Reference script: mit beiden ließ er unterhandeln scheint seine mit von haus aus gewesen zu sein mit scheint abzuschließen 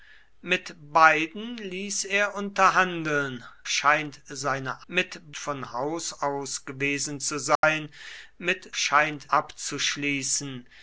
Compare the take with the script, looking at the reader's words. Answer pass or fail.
pass